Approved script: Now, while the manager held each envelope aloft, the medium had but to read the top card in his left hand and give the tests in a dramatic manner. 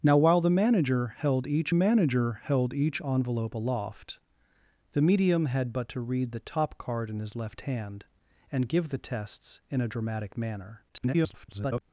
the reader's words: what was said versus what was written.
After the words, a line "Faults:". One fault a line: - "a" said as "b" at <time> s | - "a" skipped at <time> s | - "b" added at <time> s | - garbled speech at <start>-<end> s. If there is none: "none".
Now, while the manager held each manager held each envelope aloft, the medium had but to read the top card in his left hand and give the tests in a dramatic manner. [garbled]
Faults:
- "manager held each" added at 1.7 s
- garbled speech at 10.9-11.8 s